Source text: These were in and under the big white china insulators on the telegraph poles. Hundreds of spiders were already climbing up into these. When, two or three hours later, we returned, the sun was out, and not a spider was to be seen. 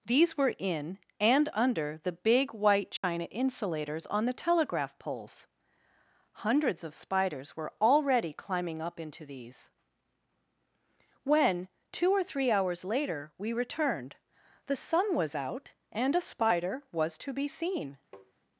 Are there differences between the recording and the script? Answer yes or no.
yes